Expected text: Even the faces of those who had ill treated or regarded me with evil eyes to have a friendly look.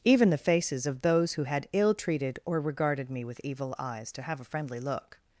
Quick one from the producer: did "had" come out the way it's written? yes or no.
yes